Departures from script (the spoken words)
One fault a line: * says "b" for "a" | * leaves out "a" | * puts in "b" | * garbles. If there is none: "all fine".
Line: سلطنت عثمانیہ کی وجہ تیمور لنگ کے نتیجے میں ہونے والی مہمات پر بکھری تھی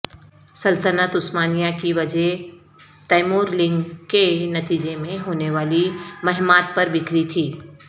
all fine